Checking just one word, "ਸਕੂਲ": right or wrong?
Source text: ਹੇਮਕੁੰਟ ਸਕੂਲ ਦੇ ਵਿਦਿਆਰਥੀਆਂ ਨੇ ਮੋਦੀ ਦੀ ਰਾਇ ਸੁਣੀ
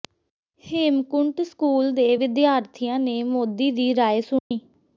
right